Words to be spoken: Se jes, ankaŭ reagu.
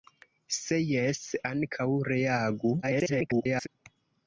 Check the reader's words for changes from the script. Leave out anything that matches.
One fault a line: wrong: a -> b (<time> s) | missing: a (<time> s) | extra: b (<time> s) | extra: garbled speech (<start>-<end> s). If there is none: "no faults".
extra: garbled speech (2.8-3.7 s)